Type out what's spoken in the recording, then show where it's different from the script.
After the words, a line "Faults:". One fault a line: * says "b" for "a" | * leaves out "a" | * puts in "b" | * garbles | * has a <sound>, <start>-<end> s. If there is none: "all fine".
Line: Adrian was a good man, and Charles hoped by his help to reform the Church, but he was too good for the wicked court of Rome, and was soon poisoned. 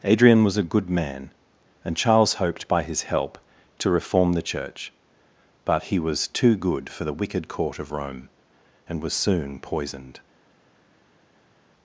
Adrian was a good man, and Charles hoped by his help to reform the Church, but he was too good for the wicked court of Rome, and was soon poisoned.
Faults:
all fine